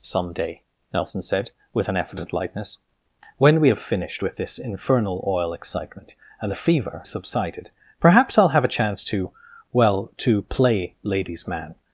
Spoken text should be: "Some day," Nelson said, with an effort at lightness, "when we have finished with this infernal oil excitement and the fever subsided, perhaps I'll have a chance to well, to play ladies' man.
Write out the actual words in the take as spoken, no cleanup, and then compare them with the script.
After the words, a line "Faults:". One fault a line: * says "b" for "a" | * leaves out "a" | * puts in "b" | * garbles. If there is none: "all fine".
"Some day," Nelson said, with an effort at lightness, "when we have finished with this infernal oil excitement and the fever subsided, perhaps I'll have a chance to well, to play ladies' man.
Faults:
all fine